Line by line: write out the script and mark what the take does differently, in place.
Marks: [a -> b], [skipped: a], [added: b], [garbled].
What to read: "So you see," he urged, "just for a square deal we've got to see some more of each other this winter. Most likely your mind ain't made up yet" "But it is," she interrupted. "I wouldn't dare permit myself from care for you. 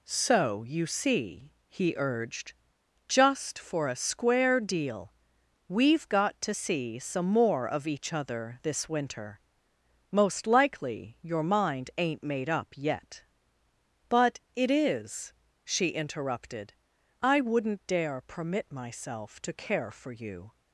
"So you see," he urged, "just for a square deal we've got to see some more of each other this winter. Most likely your mind ain't made up yet" "But it is," she interrupted. "I wouldn't dare permit myself [from -> to] care for you.